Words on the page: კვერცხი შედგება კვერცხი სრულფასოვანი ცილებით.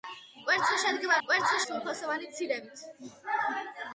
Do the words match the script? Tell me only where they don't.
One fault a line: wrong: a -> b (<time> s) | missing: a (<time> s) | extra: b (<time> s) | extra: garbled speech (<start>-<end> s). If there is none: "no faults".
no faults